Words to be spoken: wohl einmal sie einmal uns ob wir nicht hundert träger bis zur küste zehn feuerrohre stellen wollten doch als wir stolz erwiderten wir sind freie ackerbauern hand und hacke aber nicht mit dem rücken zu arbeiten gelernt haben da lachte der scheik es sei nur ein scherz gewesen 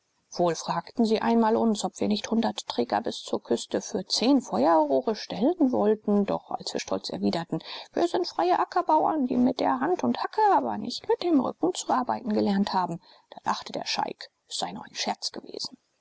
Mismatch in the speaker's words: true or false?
true